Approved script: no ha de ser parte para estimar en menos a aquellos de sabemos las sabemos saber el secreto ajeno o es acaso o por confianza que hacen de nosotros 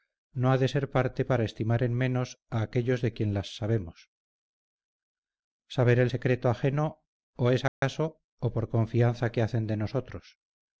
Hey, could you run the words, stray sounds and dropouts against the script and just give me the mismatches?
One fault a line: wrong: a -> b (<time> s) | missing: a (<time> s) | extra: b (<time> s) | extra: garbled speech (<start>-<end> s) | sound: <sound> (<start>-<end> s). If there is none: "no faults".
wrong: sabemos -> quien (3.1 s)
sound: dropout (7.7-7.8 s)